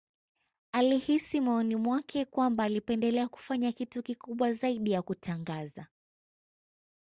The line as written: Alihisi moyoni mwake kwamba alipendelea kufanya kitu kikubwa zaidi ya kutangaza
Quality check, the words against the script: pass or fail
pass